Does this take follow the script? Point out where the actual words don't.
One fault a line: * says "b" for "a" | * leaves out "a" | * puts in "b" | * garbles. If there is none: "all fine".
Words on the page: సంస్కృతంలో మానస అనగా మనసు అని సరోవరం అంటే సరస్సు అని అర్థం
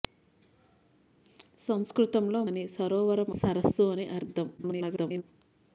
* leaves out "మానస అనగా మనసు"
* leaves out "అంటే"
* garbles